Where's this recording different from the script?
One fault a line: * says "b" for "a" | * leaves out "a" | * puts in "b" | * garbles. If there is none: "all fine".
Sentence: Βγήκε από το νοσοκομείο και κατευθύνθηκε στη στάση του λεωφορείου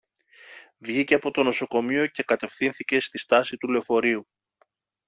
all fine